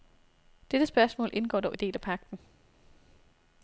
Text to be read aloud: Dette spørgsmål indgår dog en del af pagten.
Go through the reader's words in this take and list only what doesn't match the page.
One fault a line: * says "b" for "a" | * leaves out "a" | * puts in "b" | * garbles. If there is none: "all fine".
all fine